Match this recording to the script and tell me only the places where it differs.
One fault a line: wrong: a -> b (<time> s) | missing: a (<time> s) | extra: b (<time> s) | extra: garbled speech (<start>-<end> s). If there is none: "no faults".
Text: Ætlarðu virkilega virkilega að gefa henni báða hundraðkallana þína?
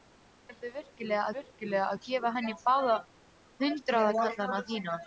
no faults